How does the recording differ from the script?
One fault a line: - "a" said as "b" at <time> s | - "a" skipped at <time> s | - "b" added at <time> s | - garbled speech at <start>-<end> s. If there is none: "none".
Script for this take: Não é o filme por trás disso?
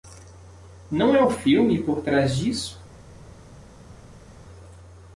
none